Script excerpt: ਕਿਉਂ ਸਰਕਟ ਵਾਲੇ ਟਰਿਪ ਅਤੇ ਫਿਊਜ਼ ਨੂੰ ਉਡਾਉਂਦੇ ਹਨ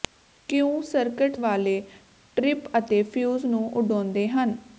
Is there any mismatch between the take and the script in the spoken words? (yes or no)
no